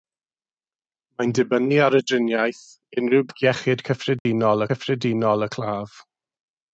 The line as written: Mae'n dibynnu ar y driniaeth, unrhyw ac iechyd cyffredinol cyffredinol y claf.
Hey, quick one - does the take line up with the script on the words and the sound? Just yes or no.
no